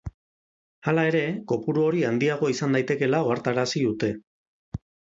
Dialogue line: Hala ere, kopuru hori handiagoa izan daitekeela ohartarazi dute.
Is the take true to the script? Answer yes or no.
yes